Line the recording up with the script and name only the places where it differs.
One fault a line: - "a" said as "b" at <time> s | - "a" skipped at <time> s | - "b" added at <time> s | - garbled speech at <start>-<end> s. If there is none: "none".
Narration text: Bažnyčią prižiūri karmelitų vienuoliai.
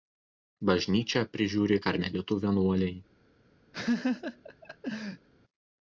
none